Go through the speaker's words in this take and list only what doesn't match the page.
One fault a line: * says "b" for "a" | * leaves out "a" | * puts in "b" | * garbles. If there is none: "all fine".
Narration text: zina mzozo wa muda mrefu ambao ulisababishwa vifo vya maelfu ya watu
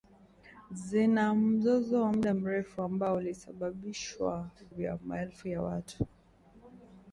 * leaves out "vifo"